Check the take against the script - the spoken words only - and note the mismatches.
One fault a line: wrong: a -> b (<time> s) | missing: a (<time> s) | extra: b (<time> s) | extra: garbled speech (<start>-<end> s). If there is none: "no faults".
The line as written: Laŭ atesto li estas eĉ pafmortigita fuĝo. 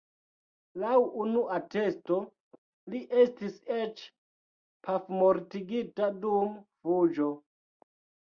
extra: unu (1.2 s)
wrong: estas -> estis (3.2 s)
extra: dum (6.2 s)